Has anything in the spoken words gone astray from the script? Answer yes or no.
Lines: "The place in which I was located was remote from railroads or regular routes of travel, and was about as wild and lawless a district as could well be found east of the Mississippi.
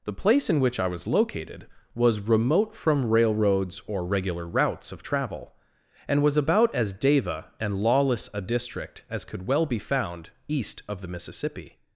yes